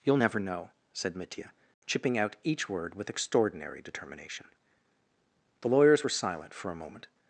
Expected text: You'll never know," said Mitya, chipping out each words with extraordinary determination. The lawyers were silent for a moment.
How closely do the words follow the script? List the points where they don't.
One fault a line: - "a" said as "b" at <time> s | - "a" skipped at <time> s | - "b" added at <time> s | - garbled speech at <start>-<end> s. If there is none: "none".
- "words" said as "word" at 2.7 s